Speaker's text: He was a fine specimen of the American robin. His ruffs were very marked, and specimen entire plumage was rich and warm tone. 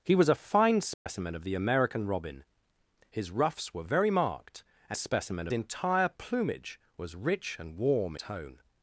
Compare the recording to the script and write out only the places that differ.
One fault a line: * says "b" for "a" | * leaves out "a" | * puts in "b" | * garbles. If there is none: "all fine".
all fine